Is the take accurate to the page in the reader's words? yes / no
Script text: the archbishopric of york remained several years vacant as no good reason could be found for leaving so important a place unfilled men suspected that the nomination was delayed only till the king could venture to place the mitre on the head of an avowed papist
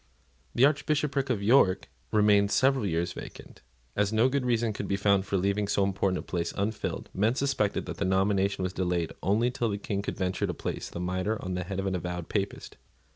yes